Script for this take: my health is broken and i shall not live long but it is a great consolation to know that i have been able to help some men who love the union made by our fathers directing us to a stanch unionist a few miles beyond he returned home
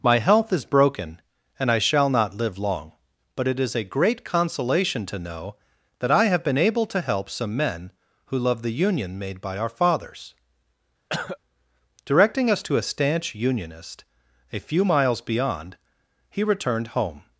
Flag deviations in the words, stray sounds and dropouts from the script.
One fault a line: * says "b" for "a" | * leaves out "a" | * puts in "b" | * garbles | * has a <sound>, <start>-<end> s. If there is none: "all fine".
* has a cough, 11.1-11.4 s